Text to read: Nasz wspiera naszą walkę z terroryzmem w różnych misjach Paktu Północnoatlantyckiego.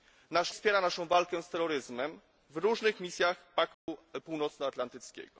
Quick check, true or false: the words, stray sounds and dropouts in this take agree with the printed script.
false